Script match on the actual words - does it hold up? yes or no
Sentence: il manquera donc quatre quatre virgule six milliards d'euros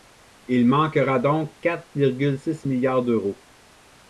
no